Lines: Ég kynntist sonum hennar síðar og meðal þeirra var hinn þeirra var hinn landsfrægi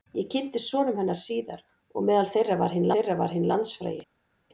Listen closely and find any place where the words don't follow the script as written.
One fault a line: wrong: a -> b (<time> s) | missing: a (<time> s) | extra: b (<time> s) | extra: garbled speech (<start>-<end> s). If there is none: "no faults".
no faults